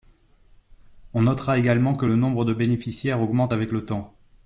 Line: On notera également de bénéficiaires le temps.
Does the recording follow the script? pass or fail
fail